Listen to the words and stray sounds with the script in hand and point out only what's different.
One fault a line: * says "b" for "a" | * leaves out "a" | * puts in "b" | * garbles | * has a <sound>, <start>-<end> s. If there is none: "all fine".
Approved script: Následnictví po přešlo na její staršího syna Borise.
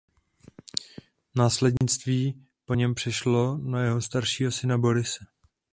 * has a dropout, 1.8-1.8 s
* puts in "něm"
* says "jeho" for "její"